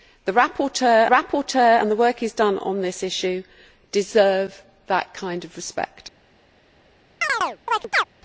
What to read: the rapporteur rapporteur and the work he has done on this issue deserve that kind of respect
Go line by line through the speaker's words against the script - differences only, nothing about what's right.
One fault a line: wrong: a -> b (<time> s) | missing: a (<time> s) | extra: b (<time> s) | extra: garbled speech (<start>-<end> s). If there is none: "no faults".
no faults